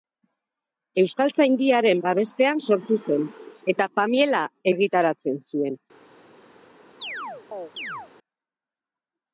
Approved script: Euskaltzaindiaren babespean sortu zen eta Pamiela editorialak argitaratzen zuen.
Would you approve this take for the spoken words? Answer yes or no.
no